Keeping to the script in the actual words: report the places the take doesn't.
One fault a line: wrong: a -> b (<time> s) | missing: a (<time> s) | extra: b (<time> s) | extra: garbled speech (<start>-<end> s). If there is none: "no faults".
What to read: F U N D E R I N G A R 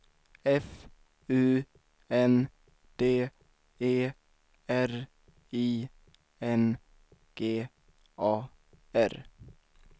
no faults